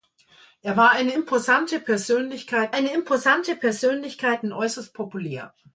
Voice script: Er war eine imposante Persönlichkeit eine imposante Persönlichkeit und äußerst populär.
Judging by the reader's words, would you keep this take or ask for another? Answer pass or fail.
pass